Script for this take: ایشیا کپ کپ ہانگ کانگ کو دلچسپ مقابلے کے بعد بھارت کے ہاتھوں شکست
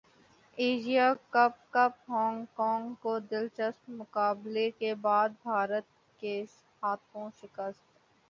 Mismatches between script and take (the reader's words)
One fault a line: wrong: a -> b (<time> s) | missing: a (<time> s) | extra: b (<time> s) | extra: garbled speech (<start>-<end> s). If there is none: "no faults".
no faults